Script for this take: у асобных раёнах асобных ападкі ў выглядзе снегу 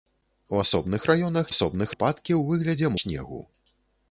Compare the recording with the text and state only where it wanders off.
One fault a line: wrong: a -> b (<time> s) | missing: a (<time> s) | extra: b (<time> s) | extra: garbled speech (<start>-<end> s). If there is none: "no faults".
no faults